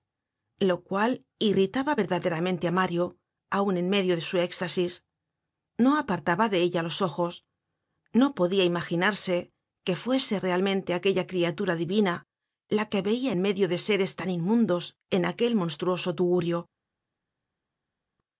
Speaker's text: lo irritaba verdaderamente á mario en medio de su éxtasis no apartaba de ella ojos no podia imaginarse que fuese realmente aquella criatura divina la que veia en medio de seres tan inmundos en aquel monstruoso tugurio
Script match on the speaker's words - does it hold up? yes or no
no